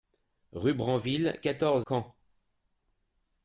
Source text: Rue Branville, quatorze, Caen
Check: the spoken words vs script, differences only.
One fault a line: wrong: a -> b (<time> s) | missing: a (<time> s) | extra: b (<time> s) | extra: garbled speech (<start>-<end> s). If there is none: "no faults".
no faults